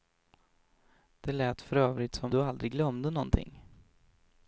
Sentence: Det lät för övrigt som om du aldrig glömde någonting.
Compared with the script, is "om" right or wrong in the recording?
wrong